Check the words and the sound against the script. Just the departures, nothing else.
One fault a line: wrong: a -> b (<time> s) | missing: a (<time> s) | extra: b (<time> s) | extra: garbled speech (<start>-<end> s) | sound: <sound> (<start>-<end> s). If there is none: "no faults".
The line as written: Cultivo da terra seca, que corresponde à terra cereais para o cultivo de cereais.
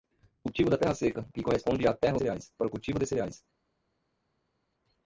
no faults